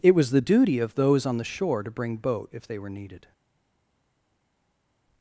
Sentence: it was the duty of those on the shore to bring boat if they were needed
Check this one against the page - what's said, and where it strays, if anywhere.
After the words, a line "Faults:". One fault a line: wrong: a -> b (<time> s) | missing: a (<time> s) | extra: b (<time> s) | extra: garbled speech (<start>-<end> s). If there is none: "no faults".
it was the duty of those on the shore to bring boat if they were needed
Faults:
no faults